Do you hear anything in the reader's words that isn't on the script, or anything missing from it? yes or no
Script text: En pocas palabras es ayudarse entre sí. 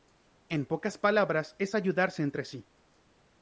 no